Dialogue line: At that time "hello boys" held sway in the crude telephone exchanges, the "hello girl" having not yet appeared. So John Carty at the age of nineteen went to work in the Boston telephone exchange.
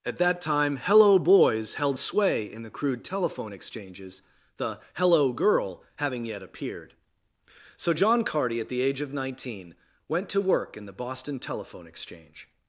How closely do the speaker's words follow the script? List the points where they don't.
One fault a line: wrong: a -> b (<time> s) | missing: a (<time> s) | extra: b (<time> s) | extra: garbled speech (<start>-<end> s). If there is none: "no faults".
missing: not (6.3 s)